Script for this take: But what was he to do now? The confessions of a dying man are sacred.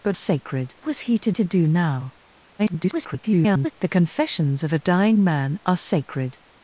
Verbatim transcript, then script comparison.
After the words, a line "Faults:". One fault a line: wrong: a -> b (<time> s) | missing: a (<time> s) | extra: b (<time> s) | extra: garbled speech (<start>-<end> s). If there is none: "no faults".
But sacred was he to to do now? [garbled] The confessions of a dying man are sacred.
Faults:
wrong: what -> sacred (0.1 s)
extra: to (1.3 s)
extra: garbled speech (2.6-3.7 s)